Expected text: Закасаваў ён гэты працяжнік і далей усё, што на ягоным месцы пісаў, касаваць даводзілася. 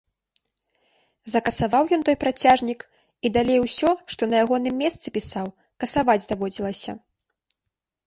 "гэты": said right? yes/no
no